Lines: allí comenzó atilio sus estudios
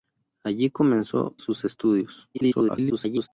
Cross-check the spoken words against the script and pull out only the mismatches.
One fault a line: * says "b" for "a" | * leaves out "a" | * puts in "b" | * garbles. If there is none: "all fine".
* leaves out "atilio"
* garbles